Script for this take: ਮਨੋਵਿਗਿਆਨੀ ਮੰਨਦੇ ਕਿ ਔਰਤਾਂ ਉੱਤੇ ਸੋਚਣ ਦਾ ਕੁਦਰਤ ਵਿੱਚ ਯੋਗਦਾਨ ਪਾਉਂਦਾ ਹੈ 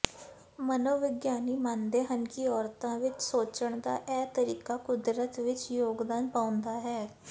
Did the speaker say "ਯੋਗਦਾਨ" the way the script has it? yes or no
yes